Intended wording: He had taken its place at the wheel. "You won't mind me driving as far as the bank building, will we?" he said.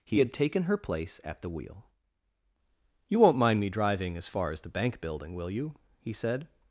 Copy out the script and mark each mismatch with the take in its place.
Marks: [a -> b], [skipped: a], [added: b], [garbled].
He had taken [its -> her] place at the wheel. "You won't mind me driving as far as the bank building, will [we?" -> you] he said.